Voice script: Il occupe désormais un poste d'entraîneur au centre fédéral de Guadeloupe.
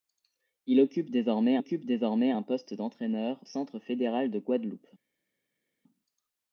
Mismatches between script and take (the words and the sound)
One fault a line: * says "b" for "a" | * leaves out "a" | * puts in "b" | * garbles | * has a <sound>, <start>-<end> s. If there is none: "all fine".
* puts in "occupe désormais"
* leaves out "au"